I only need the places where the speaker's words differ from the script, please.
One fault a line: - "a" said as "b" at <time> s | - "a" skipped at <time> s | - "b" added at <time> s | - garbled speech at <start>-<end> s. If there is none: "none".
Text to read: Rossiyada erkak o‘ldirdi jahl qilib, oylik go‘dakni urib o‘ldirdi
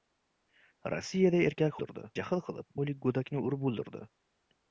none